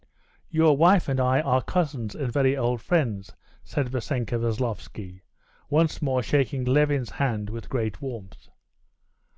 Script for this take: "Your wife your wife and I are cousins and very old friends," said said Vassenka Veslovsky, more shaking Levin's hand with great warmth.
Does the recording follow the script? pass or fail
fail